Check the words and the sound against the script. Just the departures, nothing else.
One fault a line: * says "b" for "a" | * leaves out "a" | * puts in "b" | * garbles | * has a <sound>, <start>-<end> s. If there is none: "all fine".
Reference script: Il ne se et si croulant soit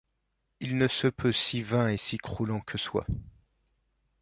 * puts in "peut si vain"
* puts in "que"